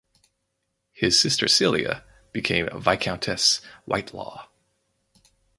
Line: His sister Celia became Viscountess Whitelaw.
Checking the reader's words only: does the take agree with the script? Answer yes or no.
yes